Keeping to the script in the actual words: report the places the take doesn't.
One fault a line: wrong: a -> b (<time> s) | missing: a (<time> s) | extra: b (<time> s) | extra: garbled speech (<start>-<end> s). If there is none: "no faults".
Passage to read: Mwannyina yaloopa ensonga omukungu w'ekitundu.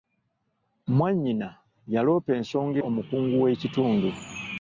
no faults